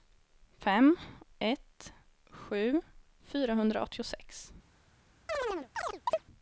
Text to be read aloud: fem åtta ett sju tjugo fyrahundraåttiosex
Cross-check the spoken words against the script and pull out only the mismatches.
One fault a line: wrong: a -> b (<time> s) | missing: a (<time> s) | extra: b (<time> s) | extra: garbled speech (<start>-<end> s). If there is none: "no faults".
missing: åtta (1.0 s)
missing: tjugo (2.8 s)